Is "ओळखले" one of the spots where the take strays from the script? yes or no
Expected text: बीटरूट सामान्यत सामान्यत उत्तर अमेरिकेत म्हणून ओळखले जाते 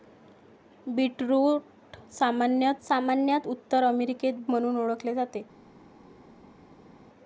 no